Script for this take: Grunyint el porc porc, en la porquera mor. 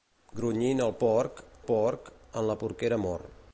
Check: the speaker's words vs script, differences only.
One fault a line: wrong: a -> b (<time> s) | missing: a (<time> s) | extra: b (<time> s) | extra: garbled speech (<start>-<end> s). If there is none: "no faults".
no faults